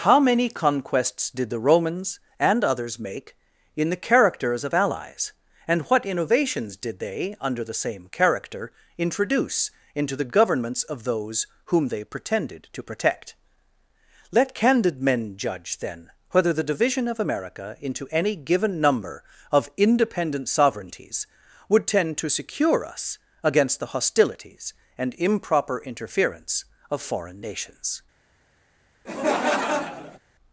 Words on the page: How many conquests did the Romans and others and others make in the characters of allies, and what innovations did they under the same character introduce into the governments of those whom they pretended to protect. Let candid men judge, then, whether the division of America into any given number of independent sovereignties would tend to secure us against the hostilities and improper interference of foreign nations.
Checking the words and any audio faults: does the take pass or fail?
fail